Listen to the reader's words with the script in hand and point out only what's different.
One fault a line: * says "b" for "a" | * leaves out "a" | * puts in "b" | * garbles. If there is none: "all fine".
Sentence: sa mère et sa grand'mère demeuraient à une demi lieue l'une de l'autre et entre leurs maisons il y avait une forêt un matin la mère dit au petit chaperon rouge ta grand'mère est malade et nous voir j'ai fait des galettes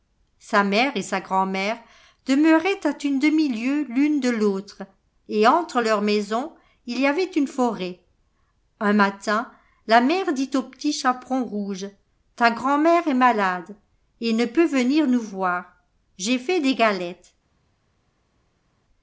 * puts in "ne peut venir"